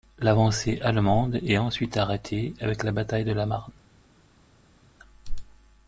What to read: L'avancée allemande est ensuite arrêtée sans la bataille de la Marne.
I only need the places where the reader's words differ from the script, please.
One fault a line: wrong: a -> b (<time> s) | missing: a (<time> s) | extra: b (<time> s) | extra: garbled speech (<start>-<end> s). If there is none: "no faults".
wrong: sans -> avec (2.6 s)